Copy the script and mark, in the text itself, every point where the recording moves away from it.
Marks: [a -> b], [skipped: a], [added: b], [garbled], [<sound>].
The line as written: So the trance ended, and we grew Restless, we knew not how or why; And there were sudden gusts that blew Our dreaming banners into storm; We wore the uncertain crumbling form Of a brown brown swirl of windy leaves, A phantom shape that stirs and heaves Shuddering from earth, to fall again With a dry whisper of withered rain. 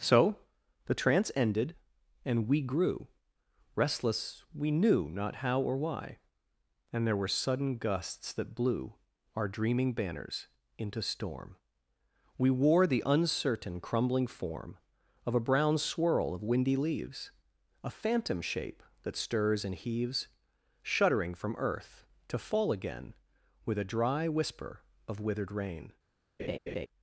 So the trance ended, and we grew Restless, we knew not how or why; And there were sudden gusts that blew Our dreaming banners into storm; We wore the uncertain crumbling form Of a brown [skipped: brown] swirl of windy leaves, A phantom shape that stirs and heaves Shuddering from earth, to fall again With a dry whisper of withered rain. [laugh]